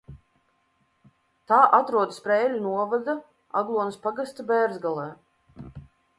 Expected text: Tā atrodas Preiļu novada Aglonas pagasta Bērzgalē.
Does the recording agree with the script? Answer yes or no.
yes